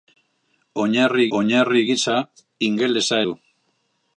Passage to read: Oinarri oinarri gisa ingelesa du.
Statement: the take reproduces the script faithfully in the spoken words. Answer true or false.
true